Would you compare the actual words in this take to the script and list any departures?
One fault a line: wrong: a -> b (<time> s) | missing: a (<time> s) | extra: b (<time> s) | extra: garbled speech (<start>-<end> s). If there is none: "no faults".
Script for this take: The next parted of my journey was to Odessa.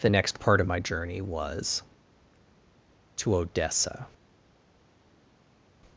wrong: parted -> part (0.4 s)